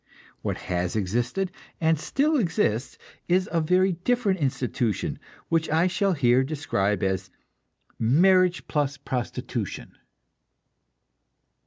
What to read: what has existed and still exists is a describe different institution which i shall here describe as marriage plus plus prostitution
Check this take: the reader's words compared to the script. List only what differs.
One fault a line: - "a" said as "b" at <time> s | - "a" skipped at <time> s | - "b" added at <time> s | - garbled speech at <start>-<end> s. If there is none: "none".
- "describe" said as "very" at 3.6 s
- "plus" skipped at 9.0 s